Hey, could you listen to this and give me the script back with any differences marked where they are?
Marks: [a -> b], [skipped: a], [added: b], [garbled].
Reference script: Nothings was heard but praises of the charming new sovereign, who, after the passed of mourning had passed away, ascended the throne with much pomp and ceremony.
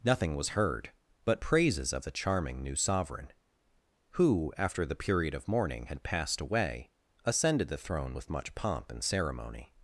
[Nothings -> Nothing] was heard but praises of the charming new sovereign, who, after the [passed -> period] of mourning had passed away, ascended the throne with much pomp and ceremony.